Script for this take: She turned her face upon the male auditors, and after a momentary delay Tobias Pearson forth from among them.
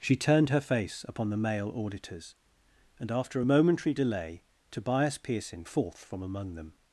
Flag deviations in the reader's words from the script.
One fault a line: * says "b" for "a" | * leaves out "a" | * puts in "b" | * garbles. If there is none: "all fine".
all fine